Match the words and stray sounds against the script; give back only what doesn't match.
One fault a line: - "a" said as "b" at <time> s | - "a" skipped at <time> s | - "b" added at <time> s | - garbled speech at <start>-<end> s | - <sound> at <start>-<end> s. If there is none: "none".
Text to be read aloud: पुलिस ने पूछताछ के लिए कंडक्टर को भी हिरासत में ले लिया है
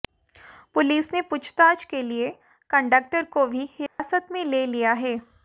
- dropout at 3.9-4.0 s